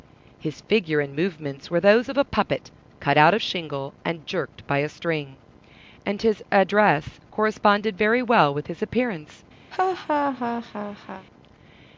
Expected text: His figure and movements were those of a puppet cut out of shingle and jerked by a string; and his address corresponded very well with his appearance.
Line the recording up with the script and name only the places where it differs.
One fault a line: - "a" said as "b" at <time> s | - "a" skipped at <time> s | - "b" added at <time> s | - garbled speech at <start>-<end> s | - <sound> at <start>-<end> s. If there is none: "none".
- laugh at 9.7-11.3 s